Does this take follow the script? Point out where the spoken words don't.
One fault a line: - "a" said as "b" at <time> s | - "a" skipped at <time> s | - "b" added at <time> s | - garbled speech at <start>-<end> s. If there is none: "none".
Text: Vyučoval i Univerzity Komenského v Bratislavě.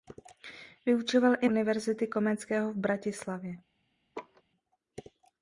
none